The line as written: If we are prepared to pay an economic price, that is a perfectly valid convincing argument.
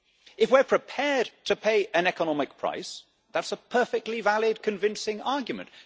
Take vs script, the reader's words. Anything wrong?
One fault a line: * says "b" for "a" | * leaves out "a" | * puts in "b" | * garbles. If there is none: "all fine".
all fine